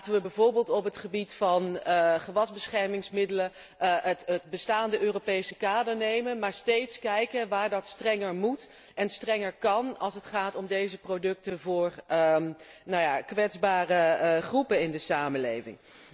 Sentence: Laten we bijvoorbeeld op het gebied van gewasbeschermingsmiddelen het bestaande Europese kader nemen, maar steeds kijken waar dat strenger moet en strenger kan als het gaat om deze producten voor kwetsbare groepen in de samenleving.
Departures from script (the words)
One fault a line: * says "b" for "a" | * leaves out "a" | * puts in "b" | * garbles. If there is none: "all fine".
all fine